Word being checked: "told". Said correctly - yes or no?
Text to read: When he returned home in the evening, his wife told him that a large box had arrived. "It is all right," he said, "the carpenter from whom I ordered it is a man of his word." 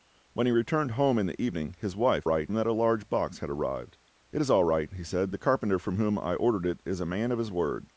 no